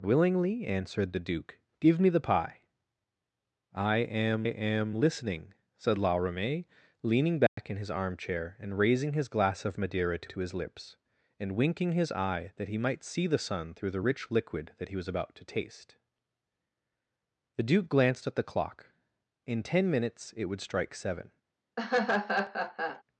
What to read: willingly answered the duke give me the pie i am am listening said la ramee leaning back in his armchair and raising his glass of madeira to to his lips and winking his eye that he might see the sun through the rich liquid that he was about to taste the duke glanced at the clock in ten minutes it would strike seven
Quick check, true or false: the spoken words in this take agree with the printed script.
true